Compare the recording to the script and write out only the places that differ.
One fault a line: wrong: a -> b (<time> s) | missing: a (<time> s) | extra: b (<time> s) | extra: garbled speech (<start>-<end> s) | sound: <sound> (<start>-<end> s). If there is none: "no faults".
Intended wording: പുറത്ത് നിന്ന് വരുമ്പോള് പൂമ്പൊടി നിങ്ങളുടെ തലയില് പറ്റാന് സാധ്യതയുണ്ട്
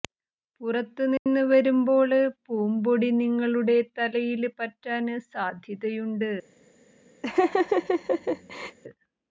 sound: dropout (1.2-1.3 s)
sound: laugh (7.2-8.8 s)